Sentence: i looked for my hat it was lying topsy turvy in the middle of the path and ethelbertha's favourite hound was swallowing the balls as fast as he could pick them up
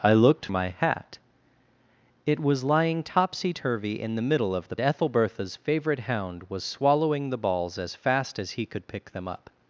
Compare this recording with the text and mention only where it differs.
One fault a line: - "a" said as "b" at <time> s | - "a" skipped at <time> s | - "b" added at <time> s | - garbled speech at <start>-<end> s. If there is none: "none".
- "for" skipped at 0.5 s
- "path and" skipped at 4.7 s